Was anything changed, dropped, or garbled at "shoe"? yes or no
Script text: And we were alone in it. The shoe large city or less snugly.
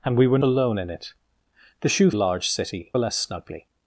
no